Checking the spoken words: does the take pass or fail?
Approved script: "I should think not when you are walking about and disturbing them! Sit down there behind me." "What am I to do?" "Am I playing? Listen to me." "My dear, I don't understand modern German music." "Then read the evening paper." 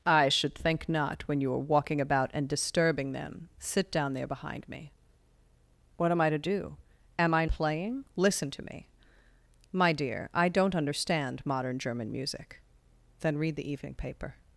pass